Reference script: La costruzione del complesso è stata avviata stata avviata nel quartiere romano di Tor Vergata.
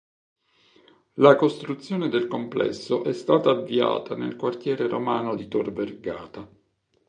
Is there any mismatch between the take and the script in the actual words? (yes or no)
yes